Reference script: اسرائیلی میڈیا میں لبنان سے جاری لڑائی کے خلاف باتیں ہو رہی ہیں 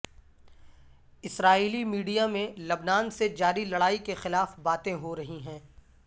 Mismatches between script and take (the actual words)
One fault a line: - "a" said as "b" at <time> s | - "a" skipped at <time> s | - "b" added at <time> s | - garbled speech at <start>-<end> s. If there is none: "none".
none